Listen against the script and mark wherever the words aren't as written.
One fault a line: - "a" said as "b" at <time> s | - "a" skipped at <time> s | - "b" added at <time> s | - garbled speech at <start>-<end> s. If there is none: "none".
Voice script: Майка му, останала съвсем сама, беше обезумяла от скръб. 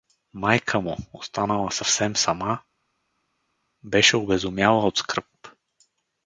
none